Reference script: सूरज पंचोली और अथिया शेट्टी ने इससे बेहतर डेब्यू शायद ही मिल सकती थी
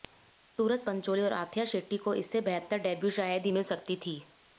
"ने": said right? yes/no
no